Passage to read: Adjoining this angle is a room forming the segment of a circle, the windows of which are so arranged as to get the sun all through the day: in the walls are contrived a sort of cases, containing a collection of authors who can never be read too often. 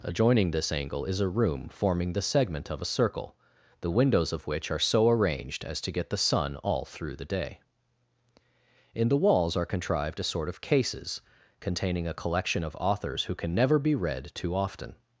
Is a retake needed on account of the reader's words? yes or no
no